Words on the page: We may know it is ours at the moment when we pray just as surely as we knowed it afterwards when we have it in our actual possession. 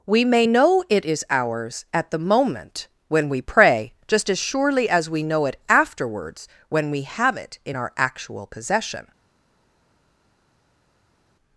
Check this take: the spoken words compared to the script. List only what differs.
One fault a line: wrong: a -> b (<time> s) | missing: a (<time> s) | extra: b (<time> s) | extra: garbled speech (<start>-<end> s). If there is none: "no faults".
wrong: knowed -> know (5.2 s)